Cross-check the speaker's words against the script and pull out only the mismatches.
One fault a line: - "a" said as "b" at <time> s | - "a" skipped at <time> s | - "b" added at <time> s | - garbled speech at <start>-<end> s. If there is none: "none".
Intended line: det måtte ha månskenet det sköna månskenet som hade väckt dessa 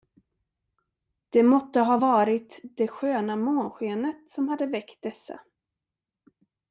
- "månskenet" said as "varit" at 1.9 s